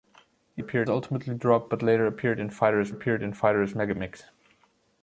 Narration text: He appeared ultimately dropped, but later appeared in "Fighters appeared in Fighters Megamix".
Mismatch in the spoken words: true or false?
false